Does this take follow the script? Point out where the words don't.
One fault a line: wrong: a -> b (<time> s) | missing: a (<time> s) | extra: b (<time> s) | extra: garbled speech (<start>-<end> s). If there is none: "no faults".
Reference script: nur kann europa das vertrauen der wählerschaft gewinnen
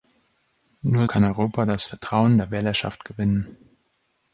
no faults